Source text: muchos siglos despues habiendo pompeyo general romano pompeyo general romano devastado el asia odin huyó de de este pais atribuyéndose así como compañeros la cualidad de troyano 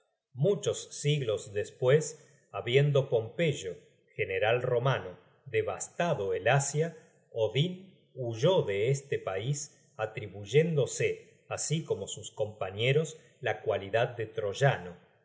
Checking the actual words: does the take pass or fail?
fail